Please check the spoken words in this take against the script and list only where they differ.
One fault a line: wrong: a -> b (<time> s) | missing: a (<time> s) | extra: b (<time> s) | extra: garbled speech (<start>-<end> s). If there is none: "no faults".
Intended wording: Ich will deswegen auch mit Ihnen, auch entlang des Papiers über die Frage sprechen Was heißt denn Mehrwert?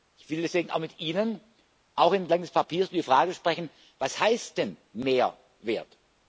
no faults